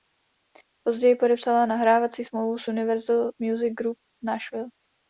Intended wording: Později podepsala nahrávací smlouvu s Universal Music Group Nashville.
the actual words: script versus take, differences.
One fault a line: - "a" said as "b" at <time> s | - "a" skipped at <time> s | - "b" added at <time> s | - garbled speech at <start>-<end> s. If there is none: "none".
none